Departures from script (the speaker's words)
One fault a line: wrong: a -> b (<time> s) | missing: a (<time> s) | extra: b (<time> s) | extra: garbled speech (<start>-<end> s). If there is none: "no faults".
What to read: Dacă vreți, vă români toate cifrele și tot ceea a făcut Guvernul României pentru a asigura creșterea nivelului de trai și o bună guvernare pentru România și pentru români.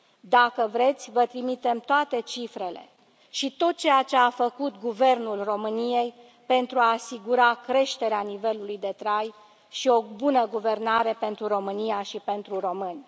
wrong: români -> trimitem (1.2 s)
extra: ce (4.0 s)